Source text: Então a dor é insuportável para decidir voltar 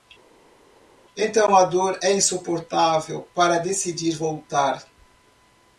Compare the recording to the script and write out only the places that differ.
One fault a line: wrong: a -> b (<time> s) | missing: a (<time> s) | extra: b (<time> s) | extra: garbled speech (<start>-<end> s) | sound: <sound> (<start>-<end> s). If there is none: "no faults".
no faults